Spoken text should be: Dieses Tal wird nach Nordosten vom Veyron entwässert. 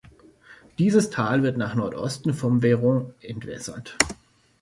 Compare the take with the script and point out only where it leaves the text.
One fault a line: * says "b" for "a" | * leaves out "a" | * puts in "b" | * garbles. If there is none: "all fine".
all fine